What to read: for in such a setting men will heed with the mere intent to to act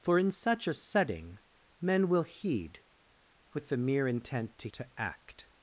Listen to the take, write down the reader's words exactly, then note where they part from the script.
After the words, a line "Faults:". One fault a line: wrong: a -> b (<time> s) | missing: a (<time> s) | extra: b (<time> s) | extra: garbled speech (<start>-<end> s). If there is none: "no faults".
for in such a setting men will heed with the mere intent to to act
Faults:
no faults